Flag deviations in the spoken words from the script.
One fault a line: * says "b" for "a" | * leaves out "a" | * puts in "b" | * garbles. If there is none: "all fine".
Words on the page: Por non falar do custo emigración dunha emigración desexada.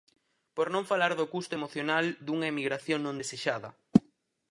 * says "emocional" for "emigración"
* puts in "non"